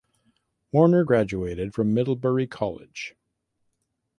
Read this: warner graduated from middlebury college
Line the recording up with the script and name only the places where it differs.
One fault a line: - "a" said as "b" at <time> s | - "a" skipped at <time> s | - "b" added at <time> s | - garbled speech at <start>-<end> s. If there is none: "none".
none